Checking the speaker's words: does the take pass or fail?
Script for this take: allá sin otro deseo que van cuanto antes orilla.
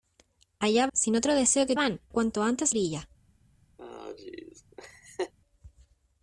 pass